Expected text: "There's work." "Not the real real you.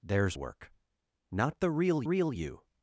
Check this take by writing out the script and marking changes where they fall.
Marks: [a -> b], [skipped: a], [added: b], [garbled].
"There's work." "Not the real real you.